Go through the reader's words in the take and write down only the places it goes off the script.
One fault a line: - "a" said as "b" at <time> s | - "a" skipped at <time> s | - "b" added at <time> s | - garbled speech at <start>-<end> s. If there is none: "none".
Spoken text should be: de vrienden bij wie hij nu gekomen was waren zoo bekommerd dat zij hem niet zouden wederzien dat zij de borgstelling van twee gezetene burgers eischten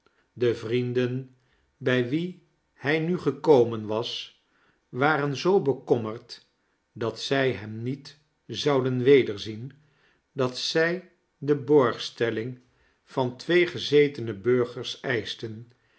none